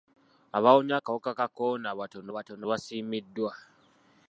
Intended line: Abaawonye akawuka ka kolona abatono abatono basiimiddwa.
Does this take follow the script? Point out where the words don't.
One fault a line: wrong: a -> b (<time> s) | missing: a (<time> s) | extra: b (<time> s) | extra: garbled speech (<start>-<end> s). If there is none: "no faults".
no faults